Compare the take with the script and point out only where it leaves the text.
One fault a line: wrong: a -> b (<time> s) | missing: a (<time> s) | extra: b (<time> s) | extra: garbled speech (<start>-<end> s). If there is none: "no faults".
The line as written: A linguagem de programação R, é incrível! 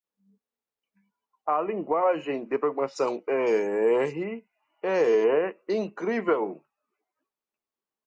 no faults